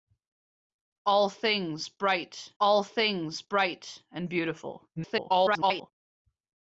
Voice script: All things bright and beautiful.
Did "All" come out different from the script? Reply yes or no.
no